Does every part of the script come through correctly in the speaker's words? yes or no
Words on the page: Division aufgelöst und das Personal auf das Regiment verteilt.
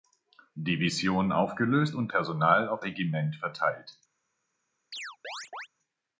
no